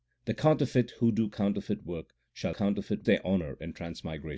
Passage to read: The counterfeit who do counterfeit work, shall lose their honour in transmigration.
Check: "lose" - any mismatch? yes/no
yes